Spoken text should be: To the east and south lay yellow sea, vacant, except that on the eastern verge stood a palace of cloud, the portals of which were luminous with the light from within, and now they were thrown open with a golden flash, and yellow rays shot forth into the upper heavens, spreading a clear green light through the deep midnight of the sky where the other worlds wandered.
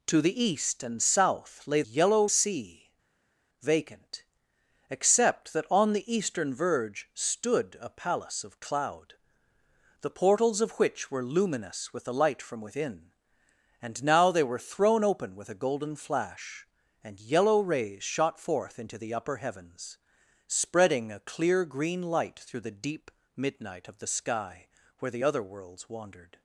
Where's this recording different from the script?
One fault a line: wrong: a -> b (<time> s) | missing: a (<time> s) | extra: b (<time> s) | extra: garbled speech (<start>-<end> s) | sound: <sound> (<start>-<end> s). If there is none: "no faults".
no faults